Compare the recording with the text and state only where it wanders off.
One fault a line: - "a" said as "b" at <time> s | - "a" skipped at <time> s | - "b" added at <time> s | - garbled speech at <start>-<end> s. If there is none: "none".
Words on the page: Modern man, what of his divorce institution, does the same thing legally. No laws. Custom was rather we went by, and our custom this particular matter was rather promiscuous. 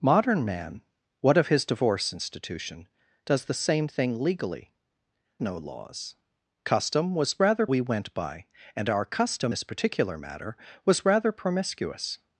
none